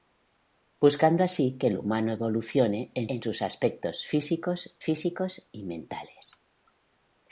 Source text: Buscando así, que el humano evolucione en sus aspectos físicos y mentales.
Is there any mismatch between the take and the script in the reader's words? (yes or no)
yes